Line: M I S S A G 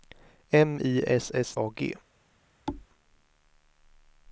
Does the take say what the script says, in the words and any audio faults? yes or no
no